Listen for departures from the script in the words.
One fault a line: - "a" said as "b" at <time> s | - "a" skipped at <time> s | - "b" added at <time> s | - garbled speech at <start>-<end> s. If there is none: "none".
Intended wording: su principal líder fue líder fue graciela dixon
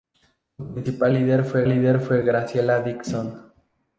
none